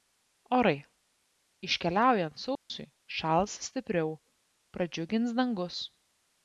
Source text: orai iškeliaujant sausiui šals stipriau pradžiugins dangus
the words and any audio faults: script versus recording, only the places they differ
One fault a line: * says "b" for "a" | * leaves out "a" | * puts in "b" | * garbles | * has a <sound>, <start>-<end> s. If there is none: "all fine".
* has a dropout, 2.6-2.7 s